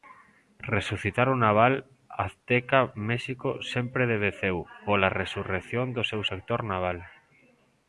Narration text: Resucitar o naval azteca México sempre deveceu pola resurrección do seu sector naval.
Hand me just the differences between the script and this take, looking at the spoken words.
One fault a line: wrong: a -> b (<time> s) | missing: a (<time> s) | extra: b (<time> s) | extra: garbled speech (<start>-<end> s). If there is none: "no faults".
no faults